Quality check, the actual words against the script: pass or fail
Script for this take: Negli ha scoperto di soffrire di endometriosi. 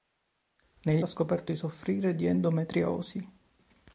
pass